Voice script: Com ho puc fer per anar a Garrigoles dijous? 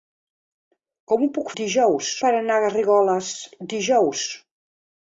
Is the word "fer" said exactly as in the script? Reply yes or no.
no